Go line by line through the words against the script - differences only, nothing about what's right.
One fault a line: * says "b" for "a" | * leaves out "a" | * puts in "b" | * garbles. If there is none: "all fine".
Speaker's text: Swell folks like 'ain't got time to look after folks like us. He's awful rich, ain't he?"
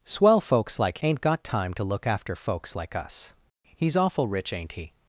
all fine